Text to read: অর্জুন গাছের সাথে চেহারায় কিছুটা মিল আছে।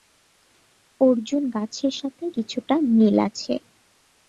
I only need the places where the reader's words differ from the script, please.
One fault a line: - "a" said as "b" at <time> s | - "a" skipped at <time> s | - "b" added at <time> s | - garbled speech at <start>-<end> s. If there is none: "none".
- "চেহারায়" skipped at 2.2 s